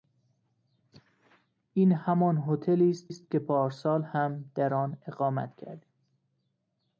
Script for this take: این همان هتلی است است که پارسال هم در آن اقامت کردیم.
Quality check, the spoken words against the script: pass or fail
pass